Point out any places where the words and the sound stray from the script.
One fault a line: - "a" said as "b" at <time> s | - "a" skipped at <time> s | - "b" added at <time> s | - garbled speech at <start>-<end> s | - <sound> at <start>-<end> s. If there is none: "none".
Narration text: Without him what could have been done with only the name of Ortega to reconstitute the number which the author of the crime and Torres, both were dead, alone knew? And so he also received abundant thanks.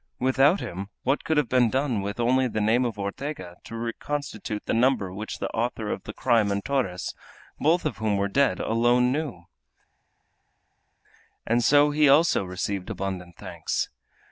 - "of whom" added at 7.8 s